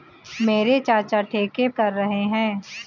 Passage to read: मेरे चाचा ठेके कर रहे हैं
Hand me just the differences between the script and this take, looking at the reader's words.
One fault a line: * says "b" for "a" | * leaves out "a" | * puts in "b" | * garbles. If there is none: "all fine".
all fine